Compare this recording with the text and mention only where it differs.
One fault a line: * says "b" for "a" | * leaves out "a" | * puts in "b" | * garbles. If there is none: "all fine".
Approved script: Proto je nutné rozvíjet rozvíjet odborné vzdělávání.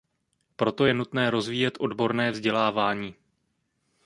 * leaves out "rozvíjet"